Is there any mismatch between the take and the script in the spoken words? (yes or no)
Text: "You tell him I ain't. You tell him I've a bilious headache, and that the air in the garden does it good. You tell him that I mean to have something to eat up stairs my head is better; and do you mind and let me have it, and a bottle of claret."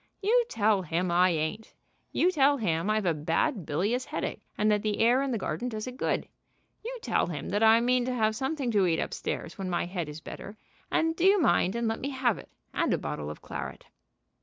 yes